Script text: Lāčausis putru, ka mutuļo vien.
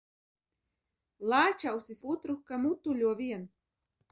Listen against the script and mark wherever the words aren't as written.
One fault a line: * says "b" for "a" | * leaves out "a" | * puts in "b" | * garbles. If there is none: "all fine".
all fine